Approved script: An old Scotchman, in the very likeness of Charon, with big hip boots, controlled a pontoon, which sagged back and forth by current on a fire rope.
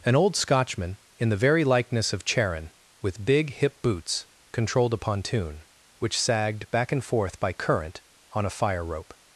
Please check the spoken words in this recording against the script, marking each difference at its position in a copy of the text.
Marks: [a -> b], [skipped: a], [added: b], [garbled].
An old Scotchman, in the very likeness of Charon, with big hip boots, controlled a pontoon, which sagged back and forth by current on a fire rope.